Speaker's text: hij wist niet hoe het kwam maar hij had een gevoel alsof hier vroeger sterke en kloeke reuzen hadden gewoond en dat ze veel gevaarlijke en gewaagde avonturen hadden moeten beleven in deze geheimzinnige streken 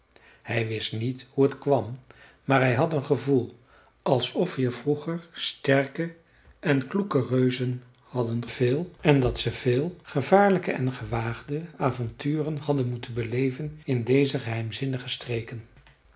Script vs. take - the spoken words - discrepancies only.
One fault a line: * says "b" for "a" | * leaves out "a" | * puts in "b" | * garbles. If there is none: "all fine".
* says "veel" for "gewoond"